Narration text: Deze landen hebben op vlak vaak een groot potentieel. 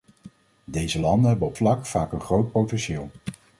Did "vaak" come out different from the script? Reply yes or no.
no